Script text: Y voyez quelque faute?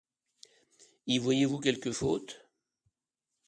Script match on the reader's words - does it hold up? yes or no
no